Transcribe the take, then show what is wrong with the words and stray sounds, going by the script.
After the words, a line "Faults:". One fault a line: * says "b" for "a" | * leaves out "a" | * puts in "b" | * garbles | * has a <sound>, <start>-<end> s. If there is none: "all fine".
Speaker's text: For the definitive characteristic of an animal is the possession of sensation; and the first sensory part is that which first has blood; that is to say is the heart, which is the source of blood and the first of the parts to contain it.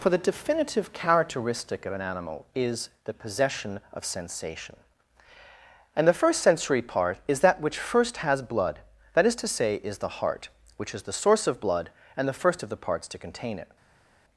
For the definitive characteristic of an animal is the possession of sensation; and the first sensory part is that which first has blood; that is to say is the heart, which is the source of blood and the first of the parts to contain it.
Faults:
all fine